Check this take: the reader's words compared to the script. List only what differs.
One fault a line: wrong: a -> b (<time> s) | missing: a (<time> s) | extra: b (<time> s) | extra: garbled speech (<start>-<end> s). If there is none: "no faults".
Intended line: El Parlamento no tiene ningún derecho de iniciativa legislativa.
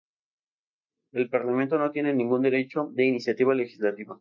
no faults